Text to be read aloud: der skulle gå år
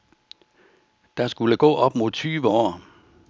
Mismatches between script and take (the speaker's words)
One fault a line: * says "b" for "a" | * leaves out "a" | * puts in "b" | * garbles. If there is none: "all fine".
* puts in "op mod tyve"